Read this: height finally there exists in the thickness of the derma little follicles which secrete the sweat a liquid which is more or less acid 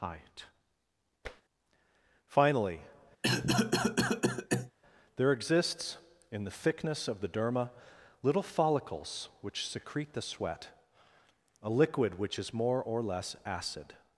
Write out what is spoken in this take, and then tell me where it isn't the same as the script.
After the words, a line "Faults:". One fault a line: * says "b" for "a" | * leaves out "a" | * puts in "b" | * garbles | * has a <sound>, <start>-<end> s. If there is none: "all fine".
height finally there exists in the thickness of the derma little follicles which secrete the sweat a liquid which is more or less acid
Faults:
* has a tap, 1.2-1.4 s
* has a cough, 3.2-4.7 s